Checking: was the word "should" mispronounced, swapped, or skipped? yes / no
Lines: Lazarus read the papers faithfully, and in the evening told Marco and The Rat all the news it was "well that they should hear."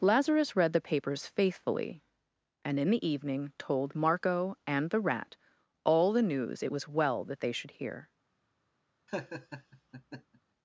no